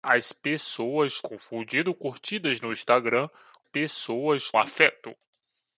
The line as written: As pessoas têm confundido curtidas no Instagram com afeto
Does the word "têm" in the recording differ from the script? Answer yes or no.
yes